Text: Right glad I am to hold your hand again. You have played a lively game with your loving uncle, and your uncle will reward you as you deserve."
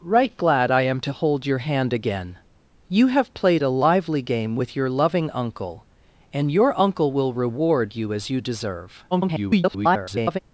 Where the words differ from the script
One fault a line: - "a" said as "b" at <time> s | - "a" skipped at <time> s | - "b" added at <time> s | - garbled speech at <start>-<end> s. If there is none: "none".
- garbled speech at 9.1-10.4 s